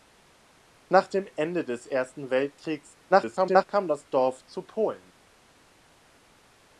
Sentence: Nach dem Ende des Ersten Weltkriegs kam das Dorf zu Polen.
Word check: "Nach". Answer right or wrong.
right